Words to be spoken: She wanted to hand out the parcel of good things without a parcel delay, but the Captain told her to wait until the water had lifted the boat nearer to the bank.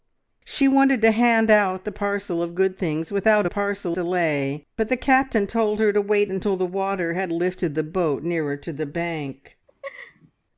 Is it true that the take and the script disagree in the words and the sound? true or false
true